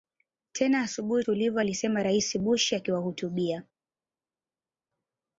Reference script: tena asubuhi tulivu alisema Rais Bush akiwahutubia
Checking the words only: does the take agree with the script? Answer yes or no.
yes